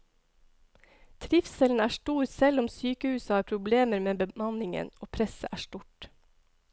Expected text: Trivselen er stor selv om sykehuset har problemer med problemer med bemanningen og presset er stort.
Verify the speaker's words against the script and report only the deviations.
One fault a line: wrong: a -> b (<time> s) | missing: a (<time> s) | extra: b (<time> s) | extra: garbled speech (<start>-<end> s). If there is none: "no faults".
missing: problemer med (4.1 s)